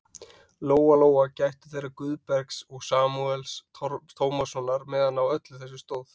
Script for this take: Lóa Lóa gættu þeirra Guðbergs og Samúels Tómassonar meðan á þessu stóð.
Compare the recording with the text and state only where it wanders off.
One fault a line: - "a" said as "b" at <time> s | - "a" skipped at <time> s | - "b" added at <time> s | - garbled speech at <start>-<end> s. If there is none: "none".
- "öllu" added at 5.3 s